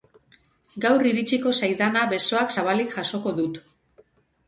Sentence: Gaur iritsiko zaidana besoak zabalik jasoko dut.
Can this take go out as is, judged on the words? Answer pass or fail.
pass